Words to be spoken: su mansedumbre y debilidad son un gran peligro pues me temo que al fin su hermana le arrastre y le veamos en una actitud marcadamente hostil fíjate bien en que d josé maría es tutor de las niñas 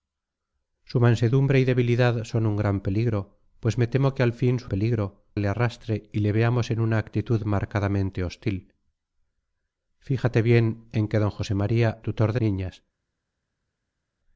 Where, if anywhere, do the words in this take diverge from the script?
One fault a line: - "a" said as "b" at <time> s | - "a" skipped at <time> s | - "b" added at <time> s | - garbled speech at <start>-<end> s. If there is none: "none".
- "hermana" said as "peligro" at 4.7 s
- "es" skipped at 12.0 s
- "las" skipped at 12.4 s